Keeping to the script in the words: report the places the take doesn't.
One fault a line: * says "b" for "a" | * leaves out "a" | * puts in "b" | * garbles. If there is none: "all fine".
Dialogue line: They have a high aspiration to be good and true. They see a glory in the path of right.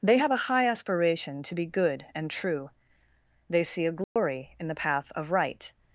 all fine